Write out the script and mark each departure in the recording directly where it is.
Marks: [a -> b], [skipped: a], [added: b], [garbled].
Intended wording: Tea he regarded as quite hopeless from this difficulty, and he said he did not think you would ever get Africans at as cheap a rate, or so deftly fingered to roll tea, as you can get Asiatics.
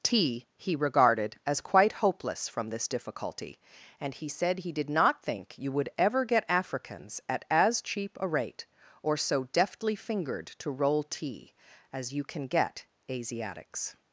Tea he regarded as quite hopeless from this difficulty, and he said he did not think you would ever get Africans at as cheap a rate, or so deftly fingered to roll tea, as you can get Asiatics.